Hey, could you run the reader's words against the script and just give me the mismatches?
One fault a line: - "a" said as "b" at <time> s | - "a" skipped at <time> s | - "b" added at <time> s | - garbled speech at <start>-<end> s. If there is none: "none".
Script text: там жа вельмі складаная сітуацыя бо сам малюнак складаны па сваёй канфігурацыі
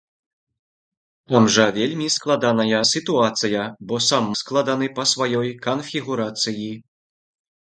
- "малюнак" skipped at 4.3 s